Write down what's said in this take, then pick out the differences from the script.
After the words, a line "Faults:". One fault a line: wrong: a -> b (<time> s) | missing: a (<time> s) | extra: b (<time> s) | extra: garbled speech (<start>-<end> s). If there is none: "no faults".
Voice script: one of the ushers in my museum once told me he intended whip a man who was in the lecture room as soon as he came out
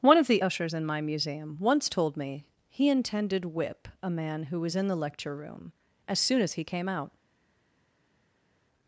one of the ushers in my museum once told me he intended whip a man who was in the lecture room as soon as he came out
Faults:
no faults